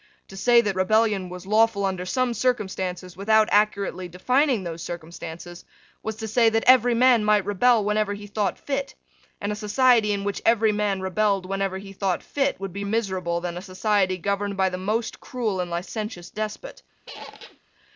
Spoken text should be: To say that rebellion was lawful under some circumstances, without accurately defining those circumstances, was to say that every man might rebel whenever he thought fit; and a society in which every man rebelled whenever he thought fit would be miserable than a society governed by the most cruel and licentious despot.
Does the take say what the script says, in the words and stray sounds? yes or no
no